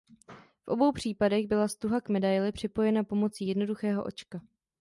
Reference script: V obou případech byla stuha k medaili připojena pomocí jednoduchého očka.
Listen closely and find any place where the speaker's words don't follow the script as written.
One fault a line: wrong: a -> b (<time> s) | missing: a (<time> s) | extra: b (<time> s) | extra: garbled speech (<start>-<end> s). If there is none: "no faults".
no faults